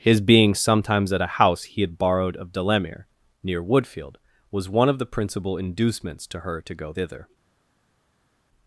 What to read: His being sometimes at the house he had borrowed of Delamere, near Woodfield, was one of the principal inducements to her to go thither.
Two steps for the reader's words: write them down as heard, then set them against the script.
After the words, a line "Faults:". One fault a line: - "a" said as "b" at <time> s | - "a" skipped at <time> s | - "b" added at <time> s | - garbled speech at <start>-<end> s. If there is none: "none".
His being sometimes at a house he had borrowed of Delamere, near Woodfield, was one of the principal inducements to her to go thither.
Faults:
- "the" said as "a" at 1.2 s